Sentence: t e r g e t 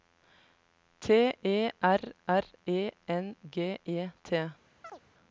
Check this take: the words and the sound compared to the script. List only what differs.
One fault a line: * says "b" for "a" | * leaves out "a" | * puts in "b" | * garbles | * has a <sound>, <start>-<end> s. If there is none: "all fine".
* puts in "r e n"
* has a chirp, 4.8-5.0 s